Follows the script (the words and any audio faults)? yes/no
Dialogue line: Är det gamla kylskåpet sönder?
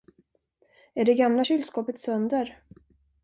yes